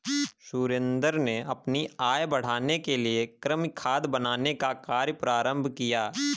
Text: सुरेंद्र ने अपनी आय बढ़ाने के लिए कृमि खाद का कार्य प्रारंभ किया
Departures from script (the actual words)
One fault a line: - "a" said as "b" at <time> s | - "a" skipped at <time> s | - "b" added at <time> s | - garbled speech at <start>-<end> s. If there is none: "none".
- "बनाने" added at 4.1 s